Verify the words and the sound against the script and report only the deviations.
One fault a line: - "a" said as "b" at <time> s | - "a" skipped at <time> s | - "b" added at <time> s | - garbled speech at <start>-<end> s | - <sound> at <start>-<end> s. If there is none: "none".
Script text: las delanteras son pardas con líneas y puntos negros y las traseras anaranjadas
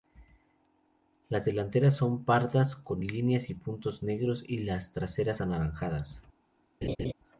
- laugh at 6.8-7.1 s